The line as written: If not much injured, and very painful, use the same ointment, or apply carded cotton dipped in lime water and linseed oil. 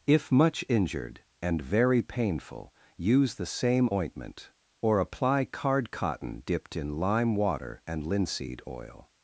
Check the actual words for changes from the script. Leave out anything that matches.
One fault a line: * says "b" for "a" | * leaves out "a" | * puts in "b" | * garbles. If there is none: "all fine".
* leaves out "not"
* says "card" for "carded"